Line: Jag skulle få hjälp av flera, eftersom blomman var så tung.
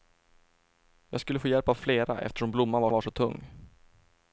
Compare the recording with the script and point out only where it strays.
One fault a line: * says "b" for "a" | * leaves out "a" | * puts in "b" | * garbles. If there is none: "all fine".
* puts in "var"